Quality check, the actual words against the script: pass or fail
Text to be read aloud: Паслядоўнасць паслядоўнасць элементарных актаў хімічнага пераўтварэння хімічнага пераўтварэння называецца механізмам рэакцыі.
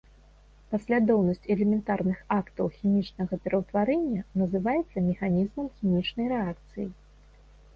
fail